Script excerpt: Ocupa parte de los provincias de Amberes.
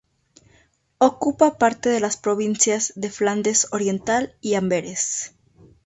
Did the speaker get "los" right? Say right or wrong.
wrong